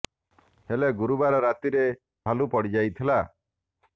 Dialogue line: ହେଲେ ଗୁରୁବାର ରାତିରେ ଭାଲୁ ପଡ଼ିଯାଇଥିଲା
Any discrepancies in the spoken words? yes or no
no